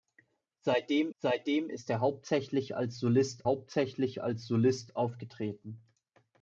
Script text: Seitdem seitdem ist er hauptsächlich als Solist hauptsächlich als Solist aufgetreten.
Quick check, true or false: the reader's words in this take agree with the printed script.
true